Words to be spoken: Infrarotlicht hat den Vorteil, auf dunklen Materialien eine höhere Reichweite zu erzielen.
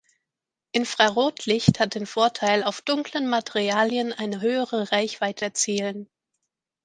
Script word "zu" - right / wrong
wrong